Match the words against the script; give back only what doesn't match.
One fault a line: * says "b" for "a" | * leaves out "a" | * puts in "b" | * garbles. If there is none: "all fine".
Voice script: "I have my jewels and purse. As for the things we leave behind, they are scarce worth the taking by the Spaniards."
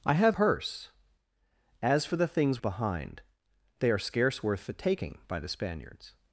* leaves out "my jewels and"
* leaves out "we leave"